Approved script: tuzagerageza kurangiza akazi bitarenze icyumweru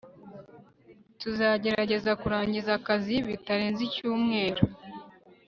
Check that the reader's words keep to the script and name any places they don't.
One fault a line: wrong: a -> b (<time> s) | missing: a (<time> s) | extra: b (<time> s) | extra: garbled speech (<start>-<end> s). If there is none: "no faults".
no faults